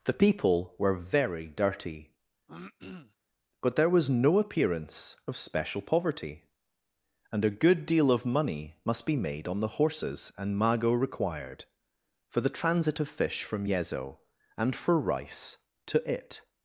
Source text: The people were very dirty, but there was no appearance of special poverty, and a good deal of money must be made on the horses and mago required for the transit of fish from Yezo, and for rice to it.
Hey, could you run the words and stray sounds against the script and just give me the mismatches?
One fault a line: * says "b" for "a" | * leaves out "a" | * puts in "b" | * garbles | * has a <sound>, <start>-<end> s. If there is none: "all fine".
* has a throat clearing, 2.5-3.2 s